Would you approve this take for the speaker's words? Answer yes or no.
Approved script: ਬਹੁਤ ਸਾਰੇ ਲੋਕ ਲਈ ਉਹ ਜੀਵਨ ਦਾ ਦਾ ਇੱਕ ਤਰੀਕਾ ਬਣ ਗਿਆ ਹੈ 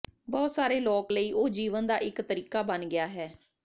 no